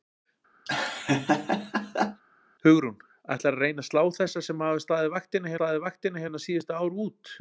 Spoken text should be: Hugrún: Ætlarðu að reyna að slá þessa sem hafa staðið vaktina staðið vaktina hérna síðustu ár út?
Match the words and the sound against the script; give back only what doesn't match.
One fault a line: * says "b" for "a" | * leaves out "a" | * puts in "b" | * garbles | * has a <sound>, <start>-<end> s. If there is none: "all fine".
* has a laugh, 0.7-2.2 s